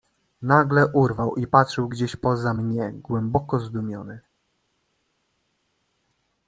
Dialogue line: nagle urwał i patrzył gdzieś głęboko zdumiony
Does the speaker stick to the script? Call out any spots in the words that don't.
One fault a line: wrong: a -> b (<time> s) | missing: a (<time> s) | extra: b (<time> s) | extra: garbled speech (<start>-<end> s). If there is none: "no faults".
extra: poza mnie (2.2 s)